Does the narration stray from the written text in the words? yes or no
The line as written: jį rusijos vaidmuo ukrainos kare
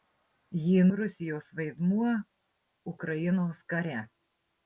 no